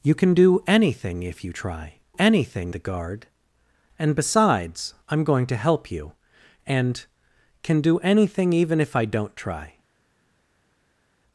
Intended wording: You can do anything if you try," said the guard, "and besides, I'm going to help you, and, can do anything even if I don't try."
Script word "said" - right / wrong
wrong